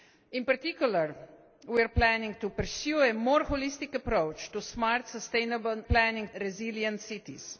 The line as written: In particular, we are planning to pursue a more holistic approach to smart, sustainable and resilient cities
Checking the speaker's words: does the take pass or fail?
fail